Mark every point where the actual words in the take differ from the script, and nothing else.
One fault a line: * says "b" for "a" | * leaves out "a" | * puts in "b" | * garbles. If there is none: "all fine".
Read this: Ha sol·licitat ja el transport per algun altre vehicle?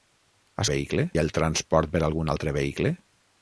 * says "vehicle" for "sol·licitat"